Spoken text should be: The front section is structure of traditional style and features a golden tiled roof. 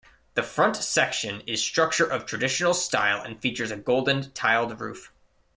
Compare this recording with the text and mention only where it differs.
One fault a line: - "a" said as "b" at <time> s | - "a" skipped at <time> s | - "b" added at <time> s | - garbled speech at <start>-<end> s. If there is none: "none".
none